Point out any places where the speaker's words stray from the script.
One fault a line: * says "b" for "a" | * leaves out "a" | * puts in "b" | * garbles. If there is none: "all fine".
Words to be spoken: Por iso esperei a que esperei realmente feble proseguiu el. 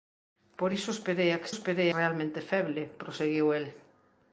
all fine